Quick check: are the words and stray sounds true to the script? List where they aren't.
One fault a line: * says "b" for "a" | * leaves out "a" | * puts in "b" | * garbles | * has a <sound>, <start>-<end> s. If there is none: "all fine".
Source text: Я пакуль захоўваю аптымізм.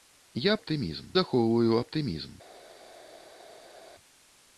* says "аптымізм" for "пакуль"